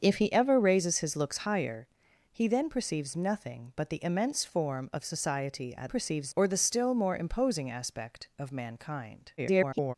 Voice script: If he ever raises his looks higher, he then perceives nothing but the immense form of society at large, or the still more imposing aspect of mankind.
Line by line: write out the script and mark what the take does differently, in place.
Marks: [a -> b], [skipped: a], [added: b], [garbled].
If he ever raises his looks higher, he then perceives nothing but the immense form of society at [large, -> perceives] or the still more imposing aspect of mankind. [garbled]